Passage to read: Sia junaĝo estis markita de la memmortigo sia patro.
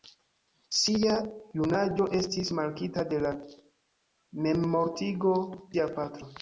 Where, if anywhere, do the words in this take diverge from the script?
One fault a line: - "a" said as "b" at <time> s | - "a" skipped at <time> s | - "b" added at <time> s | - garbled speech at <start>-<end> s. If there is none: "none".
none